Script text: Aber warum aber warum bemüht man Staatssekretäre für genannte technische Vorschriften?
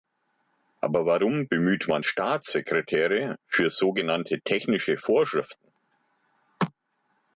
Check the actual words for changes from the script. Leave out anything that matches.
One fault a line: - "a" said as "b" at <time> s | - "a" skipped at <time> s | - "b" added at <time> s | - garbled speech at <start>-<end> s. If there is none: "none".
- "aber warum" skipped at 1.5 s
- "so" added at 3.7 s